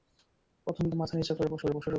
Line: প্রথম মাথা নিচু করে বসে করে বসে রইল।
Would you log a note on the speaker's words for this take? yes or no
no